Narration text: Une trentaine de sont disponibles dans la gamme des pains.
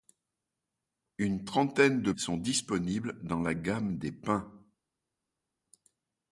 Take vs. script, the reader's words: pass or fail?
pass